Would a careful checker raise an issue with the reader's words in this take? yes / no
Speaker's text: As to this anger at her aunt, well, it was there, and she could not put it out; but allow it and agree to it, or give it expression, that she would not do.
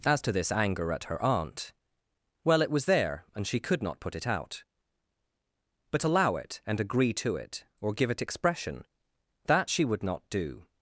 no